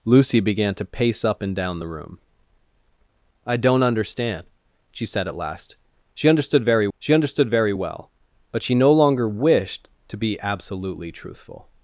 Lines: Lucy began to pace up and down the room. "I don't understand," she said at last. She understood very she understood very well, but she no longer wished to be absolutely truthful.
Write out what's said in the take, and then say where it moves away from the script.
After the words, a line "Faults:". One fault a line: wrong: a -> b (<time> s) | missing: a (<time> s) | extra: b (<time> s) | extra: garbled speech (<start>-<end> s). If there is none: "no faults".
Lucy began to pace up and down the room. "I don't understand," she said at last. She understood very she understood very well, but she no longer wished to be absolutely truthful.
Faults:
no faults